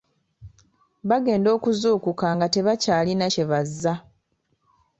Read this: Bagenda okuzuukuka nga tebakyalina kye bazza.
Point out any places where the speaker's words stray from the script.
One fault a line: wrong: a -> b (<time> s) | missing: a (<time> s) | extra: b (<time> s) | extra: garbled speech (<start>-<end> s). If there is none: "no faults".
no faults